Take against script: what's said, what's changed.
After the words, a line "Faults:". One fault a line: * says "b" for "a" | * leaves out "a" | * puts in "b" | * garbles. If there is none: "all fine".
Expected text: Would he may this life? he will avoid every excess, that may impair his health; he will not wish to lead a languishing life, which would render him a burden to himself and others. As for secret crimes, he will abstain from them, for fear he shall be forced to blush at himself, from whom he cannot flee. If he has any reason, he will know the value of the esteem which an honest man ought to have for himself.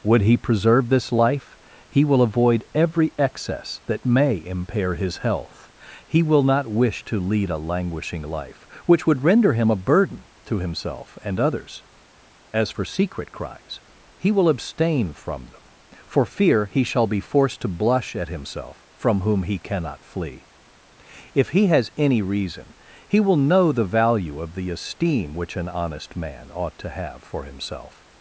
Would he preserve this life? he will avoid every excess, that may impair his health; he will not wish to lead a languishing life, which would render him a burden to himself and others. As for secret crimes, he will abstain from them, for fear he shall be forced to blush at himself, from whom he cannot flee. If he has any reason, he will know the value of the esteem which an honest man ought to have for himself.
Faults:
* says "preserve" for "may"